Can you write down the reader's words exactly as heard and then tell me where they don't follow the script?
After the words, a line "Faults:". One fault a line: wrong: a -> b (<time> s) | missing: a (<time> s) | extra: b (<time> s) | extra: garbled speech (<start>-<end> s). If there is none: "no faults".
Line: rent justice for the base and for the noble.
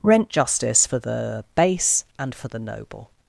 rent justice for the base and for the noble.
Faults:
no faults